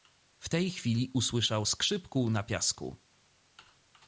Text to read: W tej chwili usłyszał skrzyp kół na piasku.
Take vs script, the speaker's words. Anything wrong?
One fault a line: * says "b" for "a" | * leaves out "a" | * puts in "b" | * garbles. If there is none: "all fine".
all fine